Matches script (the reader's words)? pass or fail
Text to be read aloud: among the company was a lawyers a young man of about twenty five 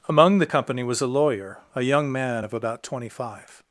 fail